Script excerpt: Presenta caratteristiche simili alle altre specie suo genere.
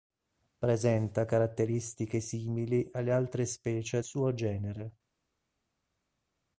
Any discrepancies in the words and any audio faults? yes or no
no